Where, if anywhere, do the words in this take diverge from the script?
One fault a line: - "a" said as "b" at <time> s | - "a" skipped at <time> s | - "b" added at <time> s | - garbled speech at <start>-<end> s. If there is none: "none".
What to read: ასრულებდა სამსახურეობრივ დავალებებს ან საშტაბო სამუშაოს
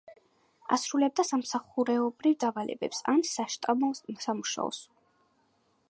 none